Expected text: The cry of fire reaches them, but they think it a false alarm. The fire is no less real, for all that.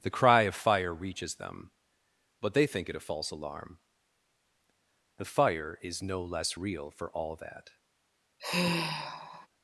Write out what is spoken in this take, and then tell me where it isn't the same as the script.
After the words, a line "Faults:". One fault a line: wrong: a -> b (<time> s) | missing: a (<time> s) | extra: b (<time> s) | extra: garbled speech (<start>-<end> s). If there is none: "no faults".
The cry of fire reaches them, but they think it a false alarm. The fire is no less real, for all that.
Faults:
no faults